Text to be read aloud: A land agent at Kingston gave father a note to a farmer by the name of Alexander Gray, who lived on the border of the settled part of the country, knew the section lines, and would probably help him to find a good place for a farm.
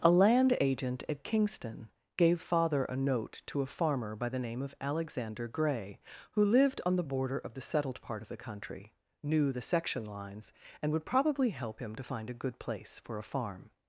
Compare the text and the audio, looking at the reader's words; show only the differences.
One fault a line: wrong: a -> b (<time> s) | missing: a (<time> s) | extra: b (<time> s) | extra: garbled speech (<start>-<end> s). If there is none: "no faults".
no faults